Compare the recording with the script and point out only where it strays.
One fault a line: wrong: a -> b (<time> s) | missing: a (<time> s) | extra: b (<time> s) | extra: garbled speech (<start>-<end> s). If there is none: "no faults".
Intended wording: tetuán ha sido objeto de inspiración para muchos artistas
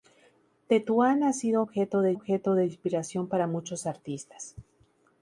extra: objeto de (2.1 s)